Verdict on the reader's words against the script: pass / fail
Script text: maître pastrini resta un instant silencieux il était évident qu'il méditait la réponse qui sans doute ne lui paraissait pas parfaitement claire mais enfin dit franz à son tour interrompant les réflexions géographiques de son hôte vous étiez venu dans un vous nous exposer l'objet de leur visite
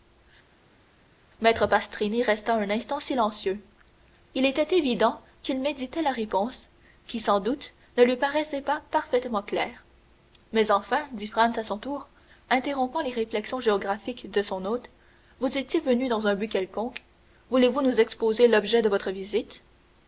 fail